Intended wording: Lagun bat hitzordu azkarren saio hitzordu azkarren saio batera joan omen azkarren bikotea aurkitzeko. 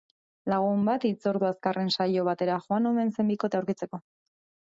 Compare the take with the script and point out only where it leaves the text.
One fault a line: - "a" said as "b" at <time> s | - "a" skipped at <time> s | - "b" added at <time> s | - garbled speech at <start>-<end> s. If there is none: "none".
- "hitzordu azkarren saio" skipped at 2.2 s
- "azkarren" said as "zen" at 3.2 s